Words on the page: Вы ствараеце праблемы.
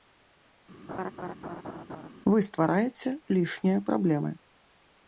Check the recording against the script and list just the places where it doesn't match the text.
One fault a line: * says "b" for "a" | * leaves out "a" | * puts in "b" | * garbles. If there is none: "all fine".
* puts in "лішнія"